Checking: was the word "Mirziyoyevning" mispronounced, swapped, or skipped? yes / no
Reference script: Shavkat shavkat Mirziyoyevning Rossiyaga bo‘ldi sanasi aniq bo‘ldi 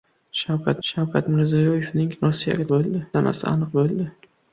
no